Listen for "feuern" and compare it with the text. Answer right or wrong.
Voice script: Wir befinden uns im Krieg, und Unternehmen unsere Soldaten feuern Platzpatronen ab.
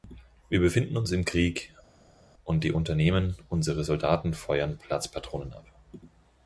right